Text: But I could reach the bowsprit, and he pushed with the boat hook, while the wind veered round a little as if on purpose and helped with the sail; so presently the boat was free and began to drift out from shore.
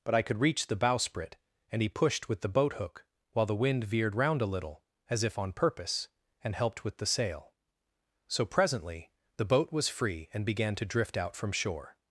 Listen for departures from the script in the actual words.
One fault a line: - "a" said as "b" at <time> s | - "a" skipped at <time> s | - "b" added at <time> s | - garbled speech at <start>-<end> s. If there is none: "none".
none